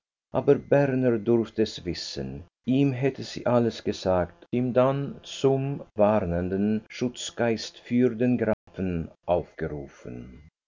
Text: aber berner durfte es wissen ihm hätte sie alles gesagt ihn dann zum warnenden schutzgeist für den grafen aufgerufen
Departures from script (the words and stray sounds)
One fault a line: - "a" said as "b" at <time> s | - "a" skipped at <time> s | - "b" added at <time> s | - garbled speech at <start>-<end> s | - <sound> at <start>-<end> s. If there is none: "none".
- dropout at 8.5-8.7 s